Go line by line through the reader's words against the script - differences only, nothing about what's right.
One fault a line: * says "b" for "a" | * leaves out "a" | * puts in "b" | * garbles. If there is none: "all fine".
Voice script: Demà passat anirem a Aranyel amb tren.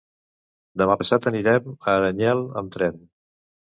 all fine